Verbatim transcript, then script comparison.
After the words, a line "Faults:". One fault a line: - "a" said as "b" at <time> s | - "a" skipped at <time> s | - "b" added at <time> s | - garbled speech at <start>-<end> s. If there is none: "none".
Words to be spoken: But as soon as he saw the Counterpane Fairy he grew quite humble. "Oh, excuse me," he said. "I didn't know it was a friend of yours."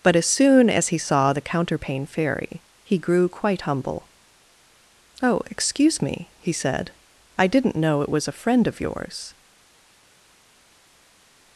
But as soon as he saw the Counterpane Fairy he grew quite humble. "Oh, excuse me," he said. "I didn't know it was a friend of yours."
Faults:
none